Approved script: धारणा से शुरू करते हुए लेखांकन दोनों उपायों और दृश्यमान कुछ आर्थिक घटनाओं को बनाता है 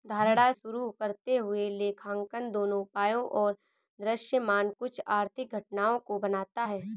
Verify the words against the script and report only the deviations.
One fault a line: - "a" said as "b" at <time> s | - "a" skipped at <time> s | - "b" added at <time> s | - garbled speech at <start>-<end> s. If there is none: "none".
- "से" skipped at 0.5 s